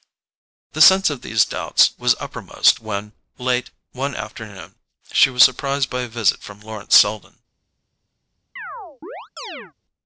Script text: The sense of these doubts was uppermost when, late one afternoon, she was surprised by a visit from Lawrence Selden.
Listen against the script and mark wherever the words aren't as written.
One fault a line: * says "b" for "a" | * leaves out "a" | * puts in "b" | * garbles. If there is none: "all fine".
all fine